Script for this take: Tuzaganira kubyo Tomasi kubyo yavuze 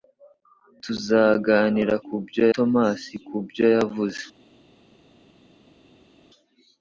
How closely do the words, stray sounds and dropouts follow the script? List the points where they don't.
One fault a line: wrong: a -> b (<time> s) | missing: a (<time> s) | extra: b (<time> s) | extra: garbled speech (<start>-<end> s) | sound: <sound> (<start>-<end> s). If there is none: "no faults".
no faults